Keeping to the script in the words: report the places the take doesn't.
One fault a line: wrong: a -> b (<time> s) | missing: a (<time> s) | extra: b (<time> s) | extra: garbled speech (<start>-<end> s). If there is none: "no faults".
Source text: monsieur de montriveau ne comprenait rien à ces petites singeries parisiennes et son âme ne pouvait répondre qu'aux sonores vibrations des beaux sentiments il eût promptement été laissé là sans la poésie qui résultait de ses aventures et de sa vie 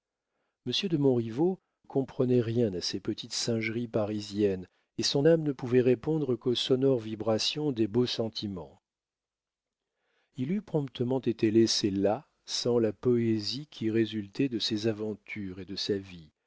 missing: ne (1.6 s)